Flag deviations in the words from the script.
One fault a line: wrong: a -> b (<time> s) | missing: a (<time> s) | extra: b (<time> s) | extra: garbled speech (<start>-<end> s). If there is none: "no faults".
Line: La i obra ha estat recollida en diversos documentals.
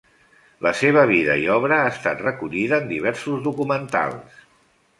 extra: seva vida (0.8 s)